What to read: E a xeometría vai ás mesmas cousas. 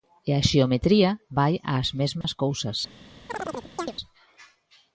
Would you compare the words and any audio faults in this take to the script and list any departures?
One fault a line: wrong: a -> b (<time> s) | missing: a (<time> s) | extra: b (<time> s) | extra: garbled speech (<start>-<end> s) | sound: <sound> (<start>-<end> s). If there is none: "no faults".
sound: dropout (2.2-2.2 s)
sound: chirp (3.3-3.9 s)